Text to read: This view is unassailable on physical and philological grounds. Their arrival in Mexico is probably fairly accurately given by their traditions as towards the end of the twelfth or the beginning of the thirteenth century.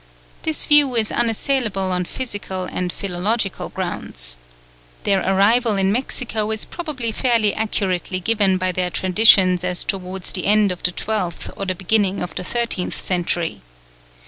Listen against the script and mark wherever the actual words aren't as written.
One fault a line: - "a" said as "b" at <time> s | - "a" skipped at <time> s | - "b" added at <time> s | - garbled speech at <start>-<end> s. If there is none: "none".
none